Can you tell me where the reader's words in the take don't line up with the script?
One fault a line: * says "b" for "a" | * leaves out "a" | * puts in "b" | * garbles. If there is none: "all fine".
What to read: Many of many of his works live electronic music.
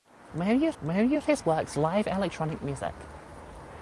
all fine